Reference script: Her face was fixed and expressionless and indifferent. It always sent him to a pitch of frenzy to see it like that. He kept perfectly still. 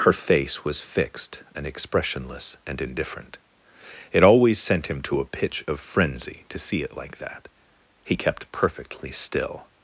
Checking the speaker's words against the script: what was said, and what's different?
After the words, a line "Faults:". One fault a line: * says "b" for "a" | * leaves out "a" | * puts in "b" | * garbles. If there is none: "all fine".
Her face was fixed and expressionless and indifferent. It always sent him to a pitch of frenzy to see it like that. He kept perfectly still.
Faults:
all fine